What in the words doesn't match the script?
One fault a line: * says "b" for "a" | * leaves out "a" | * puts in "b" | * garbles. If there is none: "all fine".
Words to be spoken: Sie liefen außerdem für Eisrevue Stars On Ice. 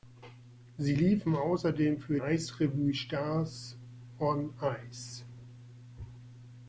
all fine